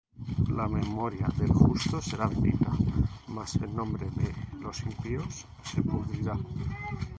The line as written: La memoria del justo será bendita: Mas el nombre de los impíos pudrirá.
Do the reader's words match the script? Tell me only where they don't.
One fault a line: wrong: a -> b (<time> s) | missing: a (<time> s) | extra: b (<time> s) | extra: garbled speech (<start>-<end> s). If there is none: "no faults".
extra: se (5.6 s)